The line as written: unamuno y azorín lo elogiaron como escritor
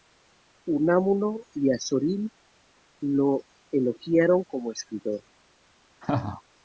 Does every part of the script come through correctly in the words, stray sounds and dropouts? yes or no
no